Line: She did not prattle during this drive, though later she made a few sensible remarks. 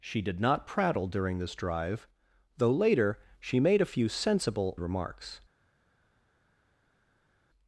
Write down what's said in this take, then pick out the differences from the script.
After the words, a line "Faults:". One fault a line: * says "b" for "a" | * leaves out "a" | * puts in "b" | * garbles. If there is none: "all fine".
She did not prattle during this drive, though later she made a few sensible remarks.
Faults:
all fine